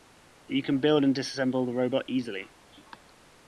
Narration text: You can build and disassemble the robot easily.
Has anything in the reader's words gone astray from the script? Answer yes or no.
no